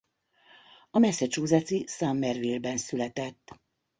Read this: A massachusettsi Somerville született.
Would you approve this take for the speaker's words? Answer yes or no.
no